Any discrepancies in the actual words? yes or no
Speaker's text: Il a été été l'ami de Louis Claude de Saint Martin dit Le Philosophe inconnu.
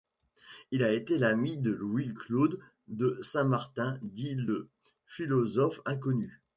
yes